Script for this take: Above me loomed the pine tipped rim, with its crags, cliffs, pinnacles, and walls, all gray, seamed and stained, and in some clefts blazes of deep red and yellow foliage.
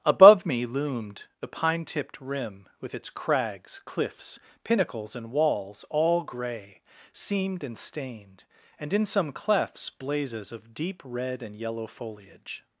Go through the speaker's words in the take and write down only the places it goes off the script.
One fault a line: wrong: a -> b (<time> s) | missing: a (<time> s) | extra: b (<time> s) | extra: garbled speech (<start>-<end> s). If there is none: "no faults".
no faults